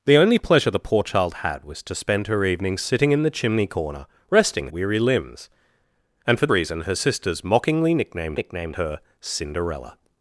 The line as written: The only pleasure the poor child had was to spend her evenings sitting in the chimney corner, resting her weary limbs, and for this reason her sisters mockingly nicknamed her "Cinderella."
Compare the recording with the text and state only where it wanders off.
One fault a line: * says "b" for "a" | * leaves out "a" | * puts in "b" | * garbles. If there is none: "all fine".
* leaves out "her"
* leaves out "this"
* puts in "nicknamed"